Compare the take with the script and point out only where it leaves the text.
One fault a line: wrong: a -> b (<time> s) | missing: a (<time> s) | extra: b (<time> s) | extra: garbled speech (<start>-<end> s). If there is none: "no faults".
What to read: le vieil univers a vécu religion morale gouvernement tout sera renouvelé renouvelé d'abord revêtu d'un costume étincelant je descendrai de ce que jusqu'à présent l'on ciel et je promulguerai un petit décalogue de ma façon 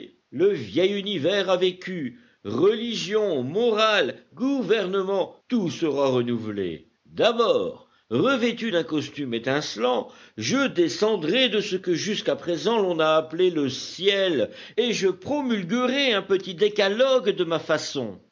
missing: renouvelé (6.9 s)
extra: a appelé le (13.0 s)